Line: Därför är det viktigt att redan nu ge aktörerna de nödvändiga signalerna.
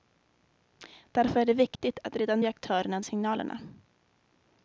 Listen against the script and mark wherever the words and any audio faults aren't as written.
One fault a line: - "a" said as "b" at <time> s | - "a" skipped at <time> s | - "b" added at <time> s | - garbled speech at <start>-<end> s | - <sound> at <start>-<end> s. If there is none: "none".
- dropout at 1.8-1.8 s
- "nu" skipped at 2.4 s
- "de nödvändiga" skipped at 3.0 s